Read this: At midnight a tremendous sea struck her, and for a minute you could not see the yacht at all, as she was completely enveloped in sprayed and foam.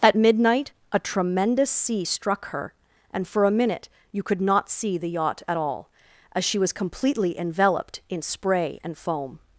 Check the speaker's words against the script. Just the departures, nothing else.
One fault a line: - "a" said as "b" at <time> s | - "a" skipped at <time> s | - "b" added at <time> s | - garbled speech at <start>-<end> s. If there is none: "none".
- "sprayed" said as "spray" at 8.2 s